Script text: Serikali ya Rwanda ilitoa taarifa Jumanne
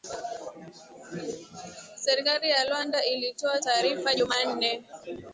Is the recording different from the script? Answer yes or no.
no